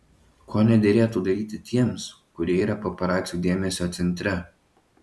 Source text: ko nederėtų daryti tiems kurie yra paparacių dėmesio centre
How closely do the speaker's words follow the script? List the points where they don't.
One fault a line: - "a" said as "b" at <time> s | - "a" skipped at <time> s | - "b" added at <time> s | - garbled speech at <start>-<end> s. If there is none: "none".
none